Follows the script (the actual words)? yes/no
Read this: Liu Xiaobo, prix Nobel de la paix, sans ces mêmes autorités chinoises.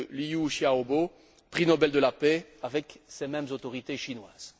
no